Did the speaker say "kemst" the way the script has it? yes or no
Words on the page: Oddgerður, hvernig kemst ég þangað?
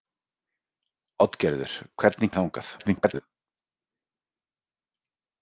no